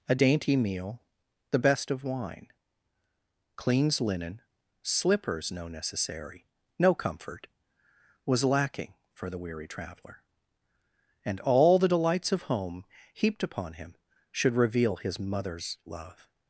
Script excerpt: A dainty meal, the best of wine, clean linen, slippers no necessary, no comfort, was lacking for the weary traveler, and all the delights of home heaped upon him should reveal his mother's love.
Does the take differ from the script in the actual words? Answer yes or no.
yes